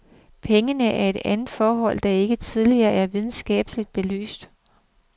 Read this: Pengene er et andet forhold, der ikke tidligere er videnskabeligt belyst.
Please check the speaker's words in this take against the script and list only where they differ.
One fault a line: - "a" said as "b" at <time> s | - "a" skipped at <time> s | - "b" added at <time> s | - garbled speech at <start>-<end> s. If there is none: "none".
none